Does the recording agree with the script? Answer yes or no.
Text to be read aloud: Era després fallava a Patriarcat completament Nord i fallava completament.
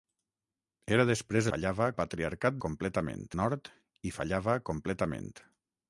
yes